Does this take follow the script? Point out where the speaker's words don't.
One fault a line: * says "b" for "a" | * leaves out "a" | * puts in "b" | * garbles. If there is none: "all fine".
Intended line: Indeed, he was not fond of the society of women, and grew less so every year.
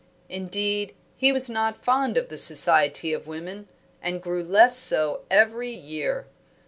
all fine